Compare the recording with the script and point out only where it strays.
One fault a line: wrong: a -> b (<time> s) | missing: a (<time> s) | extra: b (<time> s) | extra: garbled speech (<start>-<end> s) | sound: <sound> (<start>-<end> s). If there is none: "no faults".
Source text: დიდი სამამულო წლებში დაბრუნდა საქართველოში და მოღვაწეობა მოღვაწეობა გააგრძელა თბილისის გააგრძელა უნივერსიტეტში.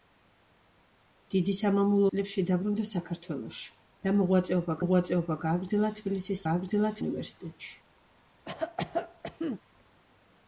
sound: cough (8.5-9.6 s)